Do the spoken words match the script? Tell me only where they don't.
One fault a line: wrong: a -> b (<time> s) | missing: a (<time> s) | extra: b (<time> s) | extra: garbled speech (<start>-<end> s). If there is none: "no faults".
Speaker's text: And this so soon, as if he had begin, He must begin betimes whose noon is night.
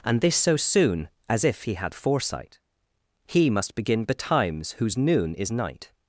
wrong: begin -> foresight (1.9 s)